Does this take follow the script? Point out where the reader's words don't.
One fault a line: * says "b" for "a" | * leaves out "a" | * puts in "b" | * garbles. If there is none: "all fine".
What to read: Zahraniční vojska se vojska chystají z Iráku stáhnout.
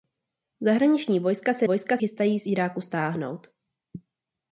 all fine